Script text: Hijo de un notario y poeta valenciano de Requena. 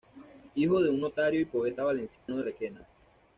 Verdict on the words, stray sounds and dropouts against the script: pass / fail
fail